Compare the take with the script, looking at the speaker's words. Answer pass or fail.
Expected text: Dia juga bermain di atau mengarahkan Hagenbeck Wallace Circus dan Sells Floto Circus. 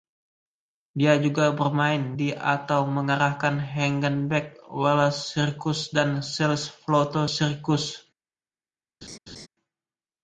pass